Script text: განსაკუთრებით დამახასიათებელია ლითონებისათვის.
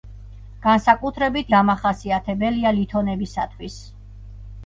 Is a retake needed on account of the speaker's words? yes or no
no